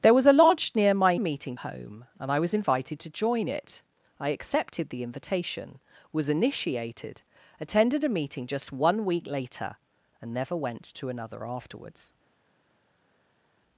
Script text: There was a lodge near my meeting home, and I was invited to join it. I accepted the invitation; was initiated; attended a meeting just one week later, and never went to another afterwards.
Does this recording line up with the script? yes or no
yes